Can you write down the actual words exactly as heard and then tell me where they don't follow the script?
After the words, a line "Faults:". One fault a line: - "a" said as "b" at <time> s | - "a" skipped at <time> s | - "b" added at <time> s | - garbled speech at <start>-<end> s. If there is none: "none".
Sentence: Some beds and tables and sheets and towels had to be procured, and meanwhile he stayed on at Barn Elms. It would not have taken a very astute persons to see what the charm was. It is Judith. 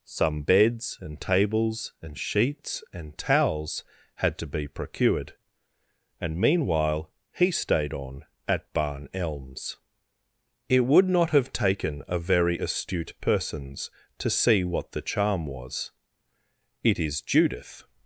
Some beds and tables and sheets and towels had to be procured, and meanwhile he stayed on at Barn Elms. It would not have taken a very astute persons to see what the charm was. It is Judith.
Faults:
none